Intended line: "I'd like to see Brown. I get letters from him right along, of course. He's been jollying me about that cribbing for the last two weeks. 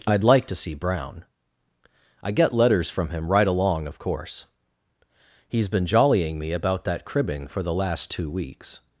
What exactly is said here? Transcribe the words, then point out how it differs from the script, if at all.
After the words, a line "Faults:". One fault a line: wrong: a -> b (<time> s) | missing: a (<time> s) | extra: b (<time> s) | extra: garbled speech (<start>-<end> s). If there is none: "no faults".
"I'd like to see Brown. I get letters from him right along, of course. He's been jollying me about that cribbing for the last two weeks.
Faults:
no faults